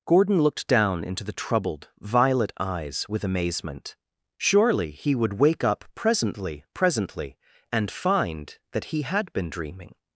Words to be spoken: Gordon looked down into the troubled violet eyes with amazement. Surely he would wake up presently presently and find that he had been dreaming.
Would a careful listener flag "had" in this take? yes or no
no